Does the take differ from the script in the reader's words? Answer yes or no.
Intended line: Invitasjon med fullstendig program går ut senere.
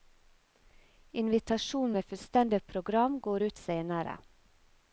no